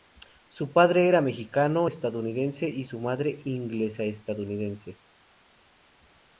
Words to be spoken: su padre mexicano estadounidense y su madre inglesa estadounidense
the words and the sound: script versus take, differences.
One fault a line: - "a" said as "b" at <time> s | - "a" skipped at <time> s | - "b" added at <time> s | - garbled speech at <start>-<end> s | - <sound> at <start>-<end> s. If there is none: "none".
- "era" added at 1.1 s